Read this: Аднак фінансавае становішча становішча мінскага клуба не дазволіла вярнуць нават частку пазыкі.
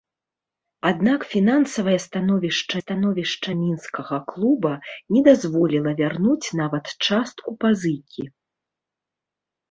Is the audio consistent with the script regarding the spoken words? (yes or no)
yes